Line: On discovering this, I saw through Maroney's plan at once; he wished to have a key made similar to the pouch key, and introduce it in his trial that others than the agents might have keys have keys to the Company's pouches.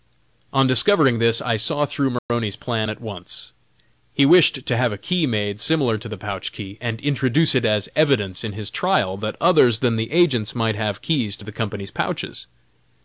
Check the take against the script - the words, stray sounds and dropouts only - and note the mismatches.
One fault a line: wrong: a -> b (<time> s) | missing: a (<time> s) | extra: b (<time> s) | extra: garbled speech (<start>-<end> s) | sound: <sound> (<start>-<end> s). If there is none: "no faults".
sound: dropout (2.2-2.3 s)
extra: as evidence (7.7 s)
missing: have keys (11.4 s)